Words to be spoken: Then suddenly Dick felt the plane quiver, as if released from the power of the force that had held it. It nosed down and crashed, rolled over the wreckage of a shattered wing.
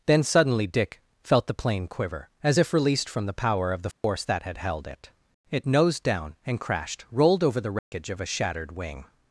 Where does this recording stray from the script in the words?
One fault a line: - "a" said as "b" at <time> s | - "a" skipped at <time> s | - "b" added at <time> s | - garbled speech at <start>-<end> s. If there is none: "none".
none